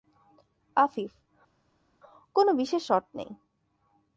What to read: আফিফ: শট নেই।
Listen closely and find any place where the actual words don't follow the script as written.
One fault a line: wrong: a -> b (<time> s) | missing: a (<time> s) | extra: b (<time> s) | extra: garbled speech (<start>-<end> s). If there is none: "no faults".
extra: কোনো বিশেষ (2.4 s)